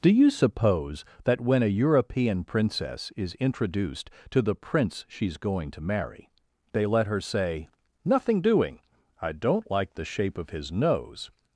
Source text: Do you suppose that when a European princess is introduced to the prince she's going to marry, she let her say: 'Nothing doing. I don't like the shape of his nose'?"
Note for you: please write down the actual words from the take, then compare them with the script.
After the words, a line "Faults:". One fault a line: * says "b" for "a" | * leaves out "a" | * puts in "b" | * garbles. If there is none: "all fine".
Do you suppose that when a European princess is introduced to the prince she's going to marry, they let her say: 'Nothing doing. I don't like the shape of his nose'?"
Faults:
* says "they" for "she"